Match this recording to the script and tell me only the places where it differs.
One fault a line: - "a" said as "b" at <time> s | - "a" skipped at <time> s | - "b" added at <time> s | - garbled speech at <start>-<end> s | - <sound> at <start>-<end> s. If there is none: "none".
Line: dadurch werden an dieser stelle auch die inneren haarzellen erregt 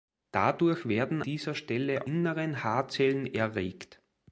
- "an" skipped at 1.2 s
- "auch die" skipped at 2.1 s